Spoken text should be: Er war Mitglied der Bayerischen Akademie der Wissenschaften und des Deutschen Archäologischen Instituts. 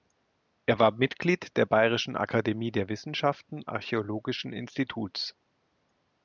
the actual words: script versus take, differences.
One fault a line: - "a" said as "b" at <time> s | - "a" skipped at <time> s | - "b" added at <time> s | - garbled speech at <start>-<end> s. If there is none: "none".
- "und des Deutschen" skipped at 3.6 s